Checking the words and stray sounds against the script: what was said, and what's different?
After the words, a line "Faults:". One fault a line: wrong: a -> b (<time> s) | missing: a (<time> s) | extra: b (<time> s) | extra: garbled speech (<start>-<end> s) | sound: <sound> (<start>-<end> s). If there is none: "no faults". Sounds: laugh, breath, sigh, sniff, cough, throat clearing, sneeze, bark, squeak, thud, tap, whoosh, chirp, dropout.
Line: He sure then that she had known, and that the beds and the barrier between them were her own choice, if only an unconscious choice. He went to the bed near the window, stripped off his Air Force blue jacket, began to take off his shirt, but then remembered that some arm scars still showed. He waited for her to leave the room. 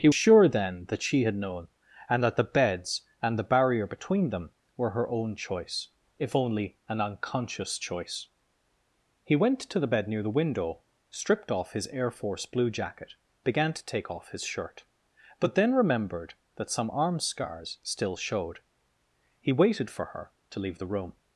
He sure then that she had known, and that the beds and the barrier between them were her own choice, if only an unconscious choice. He went to the bed near the window, stripped off his Air Force blue jacket, began to take off his shirt, but then remembered that some arm scars still showed. He waited for her to leave the room.
Faults:
no faults